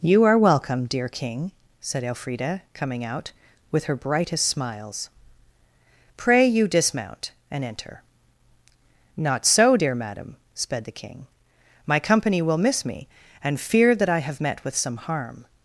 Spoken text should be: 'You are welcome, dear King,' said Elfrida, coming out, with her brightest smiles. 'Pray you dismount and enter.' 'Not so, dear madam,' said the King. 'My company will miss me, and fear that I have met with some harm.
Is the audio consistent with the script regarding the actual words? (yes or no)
no